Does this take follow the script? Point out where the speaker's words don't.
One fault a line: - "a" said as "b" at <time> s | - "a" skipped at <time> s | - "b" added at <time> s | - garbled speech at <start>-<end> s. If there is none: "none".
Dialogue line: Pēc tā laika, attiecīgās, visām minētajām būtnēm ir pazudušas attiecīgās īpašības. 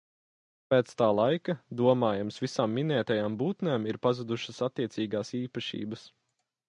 - "attiecīgās" said as "domājams" at 1.8 s